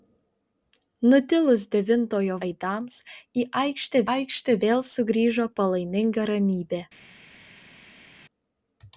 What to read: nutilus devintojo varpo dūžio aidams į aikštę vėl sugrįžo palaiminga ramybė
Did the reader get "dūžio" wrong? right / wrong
wrong